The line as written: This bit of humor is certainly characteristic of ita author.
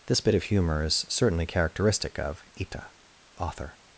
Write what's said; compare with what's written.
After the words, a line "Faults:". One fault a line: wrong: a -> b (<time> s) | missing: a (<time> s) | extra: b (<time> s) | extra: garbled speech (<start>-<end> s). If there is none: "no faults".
This bit of humor is certainly characteristic of ita author.
Faults:
no faults